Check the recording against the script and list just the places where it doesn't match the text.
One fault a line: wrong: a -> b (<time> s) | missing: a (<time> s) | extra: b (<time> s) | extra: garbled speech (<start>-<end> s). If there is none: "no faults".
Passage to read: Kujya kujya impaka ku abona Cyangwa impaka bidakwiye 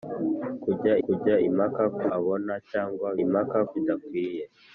no faults